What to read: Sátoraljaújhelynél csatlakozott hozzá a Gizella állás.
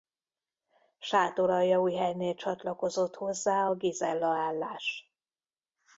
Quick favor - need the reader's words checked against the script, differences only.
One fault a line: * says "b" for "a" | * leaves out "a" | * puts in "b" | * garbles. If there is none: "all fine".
all fine